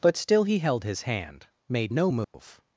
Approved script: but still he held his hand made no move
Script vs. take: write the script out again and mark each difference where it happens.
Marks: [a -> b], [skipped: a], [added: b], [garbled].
but still he held his hand made no move